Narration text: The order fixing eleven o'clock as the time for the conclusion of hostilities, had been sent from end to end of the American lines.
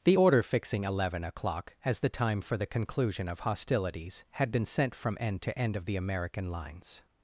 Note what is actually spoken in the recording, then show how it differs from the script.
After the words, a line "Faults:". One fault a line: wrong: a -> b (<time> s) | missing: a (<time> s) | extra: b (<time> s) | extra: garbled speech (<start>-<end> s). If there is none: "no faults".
The order fixing eleven o'clock as the time for the conclusion of hostilities, had been sent from end to end of the American lines.
Faults:
no faults